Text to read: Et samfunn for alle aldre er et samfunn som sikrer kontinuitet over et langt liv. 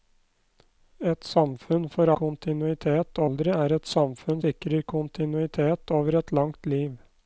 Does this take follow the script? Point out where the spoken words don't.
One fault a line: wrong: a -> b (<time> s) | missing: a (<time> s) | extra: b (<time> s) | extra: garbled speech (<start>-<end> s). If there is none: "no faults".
wrong: alle -> kontinuitet (2.2 s)
missing: som (4.4 s)